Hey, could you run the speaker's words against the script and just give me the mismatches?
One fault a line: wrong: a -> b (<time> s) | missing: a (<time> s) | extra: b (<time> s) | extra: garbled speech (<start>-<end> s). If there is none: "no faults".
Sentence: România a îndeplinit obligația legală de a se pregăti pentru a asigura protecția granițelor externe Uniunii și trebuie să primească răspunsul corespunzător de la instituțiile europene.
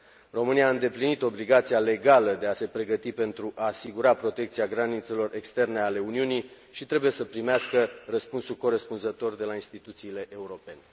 extra: ale (5.8 s)